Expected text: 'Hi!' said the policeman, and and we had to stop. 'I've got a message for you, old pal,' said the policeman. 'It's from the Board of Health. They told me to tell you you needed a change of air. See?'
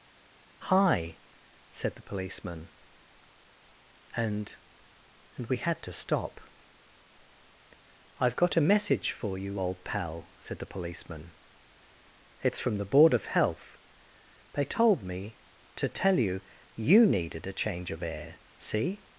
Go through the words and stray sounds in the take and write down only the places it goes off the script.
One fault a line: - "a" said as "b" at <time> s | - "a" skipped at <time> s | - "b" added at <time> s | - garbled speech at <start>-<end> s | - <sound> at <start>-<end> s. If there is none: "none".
none